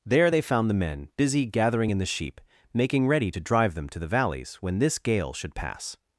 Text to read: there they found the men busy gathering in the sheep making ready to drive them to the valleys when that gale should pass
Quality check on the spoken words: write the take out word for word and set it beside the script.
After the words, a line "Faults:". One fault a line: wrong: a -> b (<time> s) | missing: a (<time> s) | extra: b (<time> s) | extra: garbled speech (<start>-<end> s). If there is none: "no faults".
there they found the men busy gathering in the sheep making ready to drive them to the valleys when this gale should pass
Faults:
wrong: that -> this (4.8 s)